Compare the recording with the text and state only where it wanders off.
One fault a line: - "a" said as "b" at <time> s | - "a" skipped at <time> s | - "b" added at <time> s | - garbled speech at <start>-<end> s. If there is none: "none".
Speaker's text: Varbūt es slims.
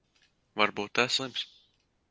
none